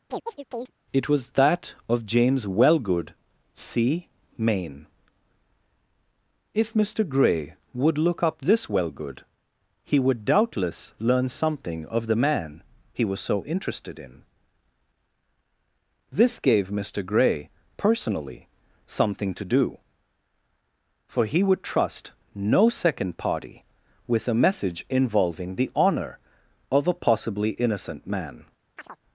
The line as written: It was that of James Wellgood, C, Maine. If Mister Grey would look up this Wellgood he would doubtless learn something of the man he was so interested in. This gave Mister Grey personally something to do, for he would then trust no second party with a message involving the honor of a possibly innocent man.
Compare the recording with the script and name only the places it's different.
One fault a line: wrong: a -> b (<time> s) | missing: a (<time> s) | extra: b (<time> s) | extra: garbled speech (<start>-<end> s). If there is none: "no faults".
missing: then (21.6 s)